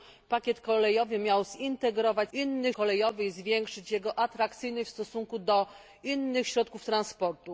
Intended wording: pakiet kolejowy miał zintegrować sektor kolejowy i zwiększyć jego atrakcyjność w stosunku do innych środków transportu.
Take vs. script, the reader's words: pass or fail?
fail